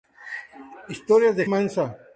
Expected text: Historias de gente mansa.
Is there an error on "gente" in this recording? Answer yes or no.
yes